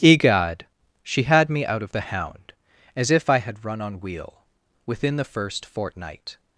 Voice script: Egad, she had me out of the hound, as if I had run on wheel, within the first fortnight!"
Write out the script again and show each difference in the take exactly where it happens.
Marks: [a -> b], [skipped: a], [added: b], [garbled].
Egad, she had me out of the hound, as if I had run on wheel, within the first fortnight!"